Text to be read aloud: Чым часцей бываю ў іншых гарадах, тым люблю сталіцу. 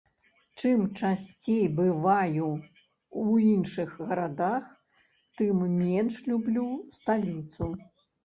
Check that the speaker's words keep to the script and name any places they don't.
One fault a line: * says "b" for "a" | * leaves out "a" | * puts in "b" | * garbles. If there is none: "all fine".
* puts in "менш"